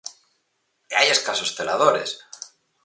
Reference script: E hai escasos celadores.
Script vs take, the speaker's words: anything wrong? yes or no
no